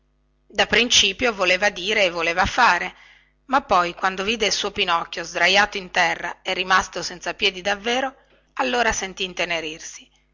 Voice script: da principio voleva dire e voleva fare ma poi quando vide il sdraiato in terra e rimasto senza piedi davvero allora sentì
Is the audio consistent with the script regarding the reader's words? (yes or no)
no